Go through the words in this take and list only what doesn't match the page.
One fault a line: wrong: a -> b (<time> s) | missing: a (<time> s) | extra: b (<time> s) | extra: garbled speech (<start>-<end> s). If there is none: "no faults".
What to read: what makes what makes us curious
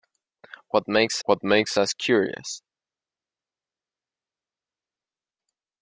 no faults